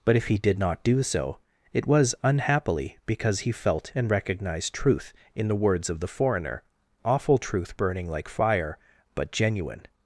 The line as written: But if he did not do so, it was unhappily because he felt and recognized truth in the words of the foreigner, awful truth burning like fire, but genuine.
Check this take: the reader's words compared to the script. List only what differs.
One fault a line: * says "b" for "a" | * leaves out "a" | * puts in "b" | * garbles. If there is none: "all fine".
all fine